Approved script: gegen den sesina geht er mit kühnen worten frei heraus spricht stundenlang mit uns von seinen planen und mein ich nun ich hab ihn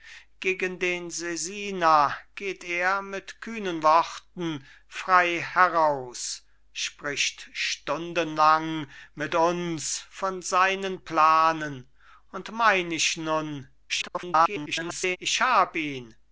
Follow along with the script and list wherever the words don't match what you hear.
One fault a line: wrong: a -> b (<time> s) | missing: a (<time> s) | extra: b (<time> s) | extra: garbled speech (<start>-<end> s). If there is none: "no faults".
extra: garbled speech (13.9-15.2 s)